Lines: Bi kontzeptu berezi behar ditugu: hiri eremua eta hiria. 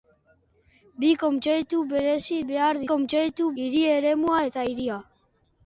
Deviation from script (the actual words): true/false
true